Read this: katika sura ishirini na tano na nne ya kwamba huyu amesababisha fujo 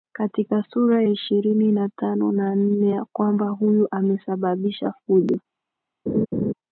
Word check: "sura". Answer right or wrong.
right